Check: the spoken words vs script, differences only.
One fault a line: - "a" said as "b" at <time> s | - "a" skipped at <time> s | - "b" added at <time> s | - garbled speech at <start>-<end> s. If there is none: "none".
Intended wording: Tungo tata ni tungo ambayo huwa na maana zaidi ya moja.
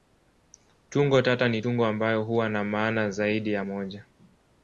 none